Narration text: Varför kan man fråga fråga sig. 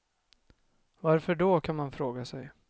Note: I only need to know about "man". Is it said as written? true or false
true